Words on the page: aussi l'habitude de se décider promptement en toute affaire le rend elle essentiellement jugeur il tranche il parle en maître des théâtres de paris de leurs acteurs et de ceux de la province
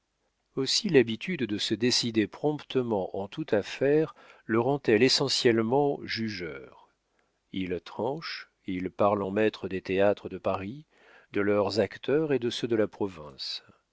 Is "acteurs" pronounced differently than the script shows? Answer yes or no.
no